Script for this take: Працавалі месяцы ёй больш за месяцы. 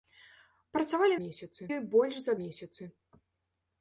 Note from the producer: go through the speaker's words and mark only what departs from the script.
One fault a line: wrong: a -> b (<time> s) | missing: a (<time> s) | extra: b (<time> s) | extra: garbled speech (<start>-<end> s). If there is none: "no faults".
no faults